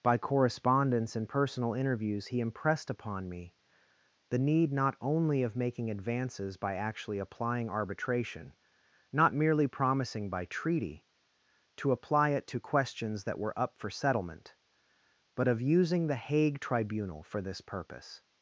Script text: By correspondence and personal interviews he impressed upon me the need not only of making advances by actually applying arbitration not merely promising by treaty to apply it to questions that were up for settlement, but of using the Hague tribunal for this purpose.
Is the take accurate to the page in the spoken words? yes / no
yes